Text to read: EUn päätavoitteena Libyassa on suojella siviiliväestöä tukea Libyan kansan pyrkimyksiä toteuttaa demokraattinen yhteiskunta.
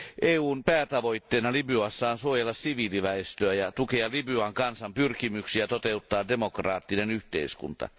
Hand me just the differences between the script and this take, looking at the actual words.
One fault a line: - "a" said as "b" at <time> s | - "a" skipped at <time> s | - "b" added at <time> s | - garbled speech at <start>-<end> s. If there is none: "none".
- "ja" added at 3.5 s